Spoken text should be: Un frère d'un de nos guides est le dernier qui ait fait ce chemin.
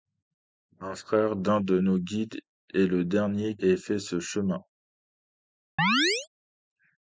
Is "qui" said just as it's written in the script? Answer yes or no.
no